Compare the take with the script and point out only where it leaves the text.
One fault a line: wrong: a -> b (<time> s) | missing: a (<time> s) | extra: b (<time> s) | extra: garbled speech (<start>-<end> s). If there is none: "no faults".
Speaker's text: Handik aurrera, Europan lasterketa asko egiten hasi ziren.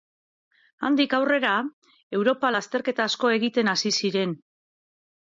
no faults